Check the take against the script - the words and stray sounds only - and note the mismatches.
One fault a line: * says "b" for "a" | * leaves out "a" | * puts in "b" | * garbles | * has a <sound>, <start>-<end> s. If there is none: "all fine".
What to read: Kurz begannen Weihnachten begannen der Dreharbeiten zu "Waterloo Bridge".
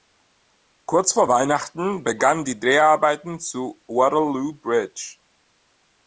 * says "vor" for "begannen"
* says "die" for "der"